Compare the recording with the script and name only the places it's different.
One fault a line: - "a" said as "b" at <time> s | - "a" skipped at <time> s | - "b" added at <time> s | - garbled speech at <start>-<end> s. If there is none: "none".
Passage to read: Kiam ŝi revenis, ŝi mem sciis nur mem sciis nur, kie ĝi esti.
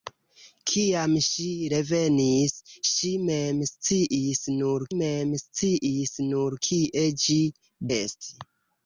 none